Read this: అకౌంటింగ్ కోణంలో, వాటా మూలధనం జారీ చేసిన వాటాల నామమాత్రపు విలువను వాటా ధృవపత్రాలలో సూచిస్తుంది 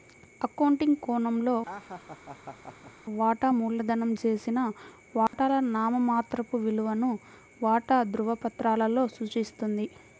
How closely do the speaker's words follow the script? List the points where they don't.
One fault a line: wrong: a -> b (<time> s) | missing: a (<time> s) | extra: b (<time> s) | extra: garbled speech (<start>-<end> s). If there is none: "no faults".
missing: జారీ (4.1 s)